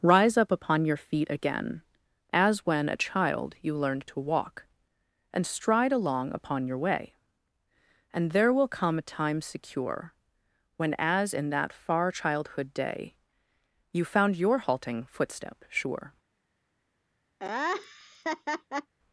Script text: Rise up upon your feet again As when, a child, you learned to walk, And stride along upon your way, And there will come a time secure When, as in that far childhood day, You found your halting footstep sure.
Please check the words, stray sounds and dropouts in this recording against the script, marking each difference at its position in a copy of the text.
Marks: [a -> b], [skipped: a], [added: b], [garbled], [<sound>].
Rise up upon your feet again As when, a child, you learned to walk, And stride along upon your way, And there will come a time secure When, as in that far childhood day, You found your halting footstep sure. [laugh]